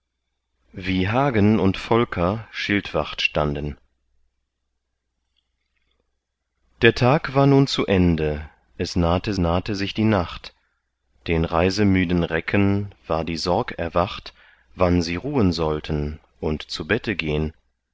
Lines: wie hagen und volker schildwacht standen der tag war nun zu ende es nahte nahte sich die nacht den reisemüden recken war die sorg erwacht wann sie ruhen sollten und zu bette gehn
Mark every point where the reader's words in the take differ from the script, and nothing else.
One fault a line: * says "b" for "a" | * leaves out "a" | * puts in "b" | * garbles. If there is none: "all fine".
all fine